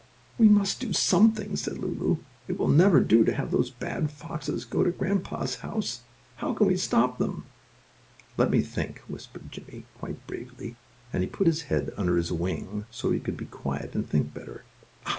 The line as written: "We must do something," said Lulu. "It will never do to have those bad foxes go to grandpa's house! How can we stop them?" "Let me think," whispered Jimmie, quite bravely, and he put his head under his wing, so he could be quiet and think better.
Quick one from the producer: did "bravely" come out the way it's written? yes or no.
yes